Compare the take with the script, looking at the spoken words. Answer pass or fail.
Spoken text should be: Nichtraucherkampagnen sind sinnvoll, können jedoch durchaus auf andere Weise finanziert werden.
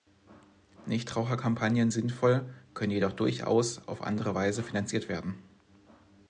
fail